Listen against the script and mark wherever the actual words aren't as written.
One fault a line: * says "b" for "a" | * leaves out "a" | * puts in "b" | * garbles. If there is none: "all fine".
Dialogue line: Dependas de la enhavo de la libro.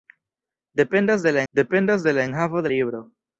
* says "dependas" for "enhavo"
* puts in "enhavo de"